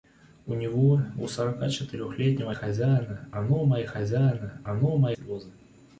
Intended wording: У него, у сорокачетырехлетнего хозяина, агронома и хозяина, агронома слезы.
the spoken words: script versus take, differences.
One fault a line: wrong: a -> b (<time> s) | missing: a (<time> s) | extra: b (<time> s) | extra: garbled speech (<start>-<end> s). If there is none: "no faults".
no faults